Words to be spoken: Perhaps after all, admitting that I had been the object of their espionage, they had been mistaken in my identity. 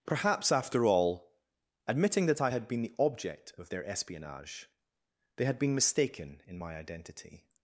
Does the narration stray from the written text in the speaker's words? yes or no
no